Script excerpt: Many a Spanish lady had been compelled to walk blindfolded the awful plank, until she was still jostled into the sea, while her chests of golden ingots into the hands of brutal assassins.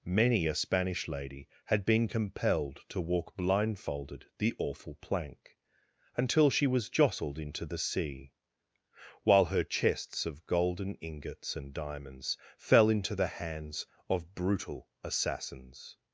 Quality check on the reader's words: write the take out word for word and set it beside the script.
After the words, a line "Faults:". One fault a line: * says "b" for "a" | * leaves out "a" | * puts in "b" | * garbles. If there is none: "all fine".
Many a Spanish lady had been compelled to walk blindfolded the awful plank, until she was jostled into the sea, while her chests of golden ingots and diamonds fell into the hands of brutal assassins.
Faults:
* leaves out "still"
* puts in "and diamonds fell"